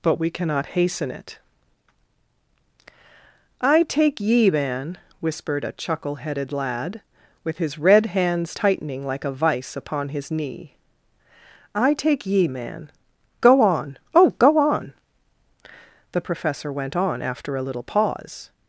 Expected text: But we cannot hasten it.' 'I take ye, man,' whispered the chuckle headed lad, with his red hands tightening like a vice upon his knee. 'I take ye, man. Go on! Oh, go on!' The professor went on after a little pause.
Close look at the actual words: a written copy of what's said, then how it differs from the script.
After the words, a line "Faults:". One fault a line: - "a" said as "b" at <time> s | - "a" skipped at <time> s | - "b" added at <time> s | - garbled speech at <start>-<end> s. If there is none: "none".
But we cannot hasten it.' 'I take ye, man,' whispered a chuckle headed lad, with his red hands tightening like a vice upon his knee. 'I take ye, man. Go on! Oh, go on!' The professor went on after a little pause.
Faults:
- "the" said as "a" at 5.6 s